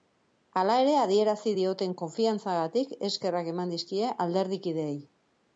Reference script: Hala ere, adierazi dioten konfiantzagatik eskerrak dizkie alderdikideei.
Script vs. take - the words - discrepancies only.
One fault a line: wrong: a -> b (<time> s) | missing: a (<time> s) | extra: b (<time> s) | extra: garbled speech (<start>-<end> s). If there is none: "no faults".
extra: eman (3.6 s)